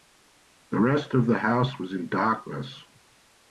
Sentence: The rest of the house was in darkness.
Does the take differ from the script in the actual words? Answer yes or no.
no